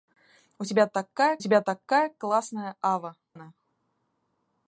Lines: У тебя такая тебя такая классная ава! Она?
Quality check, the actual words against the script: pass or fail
pass